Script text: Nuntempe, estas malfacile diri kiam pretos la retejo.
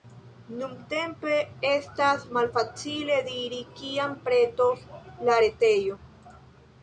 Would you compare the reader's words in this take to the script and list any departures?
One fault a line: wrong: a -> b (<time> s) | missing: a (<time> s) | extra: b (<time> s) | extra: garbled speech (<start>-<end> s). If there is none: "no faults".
no faults